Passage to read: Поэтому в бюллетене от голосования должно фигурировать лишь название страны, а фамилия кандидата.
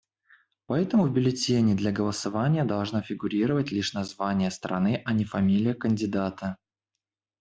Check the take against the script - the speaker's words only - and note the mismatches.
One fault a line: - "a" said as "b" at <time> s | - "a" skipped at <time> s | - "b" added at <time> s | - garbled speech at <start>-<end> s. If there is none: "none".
- "от" said as "для" at 1.7 s
- "не" added at 5.1 s